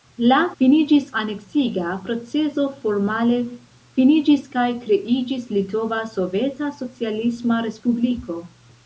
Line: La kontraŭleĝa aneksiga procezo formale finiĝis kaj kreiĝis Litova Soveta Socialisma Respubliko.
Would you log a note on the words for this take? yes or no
yes